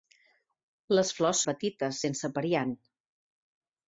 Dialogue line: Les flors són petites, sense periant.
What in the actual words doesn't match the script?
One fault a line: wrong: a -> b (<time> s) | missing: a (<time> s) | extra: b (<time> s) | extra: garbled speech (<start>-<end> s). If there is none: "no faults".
missing: són (1.4 s)